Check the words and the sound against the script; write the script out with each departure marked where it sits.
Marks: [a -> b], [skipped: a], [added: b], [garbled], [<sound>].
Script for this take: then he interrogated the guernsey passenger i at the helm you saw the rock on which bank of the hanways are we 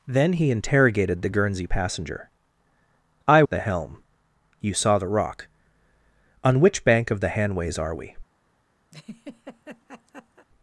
then he interrogated the guernsey passenger i at the helm you saw the rock on which bank of the hanways are we [laugh]